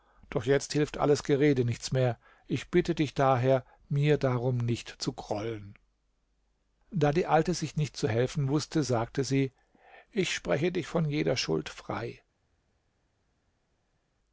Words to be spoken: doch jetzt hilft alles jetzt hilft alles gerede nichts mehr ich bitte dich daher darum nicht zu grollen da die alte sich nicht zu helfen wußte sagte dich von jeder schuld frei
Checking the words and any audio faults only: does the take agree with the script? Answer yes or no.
no